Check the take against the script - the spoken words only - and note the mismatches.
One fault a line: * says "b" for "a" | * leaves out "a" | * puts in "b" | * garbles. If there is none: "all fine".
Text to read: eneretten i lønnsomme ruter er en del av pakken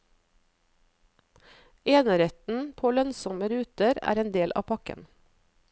* says "på" for "i"